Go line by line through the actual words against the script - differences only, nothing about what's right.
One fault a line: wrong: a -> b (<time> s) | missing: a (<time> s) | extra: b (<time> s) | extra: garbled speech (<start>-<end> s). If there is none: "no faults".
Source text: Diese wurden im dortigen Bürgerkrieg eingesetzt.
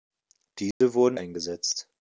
missing: im dortigen Bürgerkrieg (1.2 s)